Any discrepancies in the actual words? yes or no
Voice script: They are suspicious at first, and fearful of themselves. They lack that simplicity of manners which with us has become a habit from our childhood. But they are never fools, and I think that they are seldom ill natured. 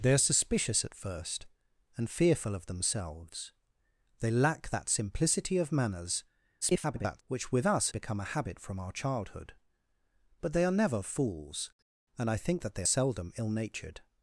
yes